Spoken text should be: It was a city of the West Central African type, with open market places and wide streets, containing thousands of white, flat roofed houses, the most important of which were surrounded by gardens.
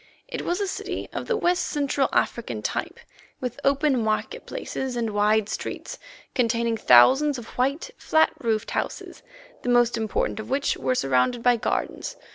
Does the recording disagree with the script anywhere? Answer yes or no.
no